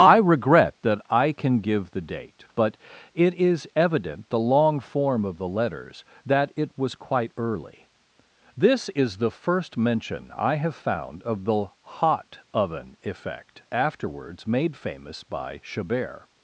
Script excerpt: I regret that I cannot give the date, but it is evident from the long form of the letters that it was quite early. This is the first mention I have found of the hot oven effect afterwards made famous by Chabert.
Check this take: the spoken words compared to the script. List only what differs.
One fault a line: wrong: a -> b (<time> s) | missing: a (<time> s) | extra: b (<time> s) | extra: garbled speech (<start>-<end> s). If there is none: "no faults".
wrong: cannot -> can (1.3 s)
missing: from (4.3 s)